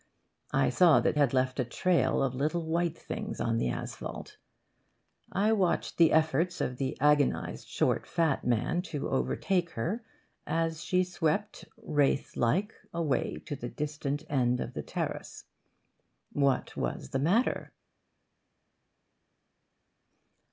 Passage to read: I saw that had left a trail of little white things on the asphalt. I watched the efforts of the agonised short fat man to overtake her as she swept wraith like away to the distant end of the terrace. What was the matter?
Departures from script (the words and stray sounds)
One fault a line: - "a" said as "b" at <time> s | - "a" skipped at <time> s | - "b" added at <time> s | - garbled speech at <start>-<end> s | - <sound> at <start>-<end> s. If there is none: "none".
none